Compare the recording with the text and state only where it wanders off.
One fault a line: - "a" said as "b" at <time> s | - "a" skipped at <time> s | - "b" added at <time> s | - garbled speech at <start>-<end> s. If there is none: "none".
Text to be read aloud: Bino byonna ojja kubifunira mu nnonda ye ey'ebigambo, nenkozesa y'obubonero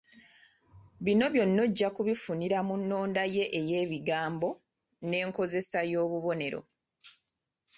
none